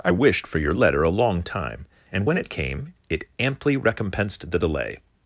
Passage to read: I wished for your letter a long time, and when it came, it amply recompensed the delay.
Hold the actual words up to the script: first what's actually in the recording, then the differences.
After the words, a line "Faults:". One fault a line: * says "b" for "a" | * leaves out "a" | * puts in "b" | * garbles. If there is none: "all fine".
I wished for your letter a long time, and when it came, it amply recompensed the delay.
Faults:
all fine